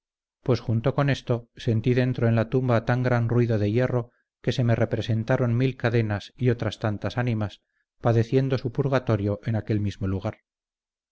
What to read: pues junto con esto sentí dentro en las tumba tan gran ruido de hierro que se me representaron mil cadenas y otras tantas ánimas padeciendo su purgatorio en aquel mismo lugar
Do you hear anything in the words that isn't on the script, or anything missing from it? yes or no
yes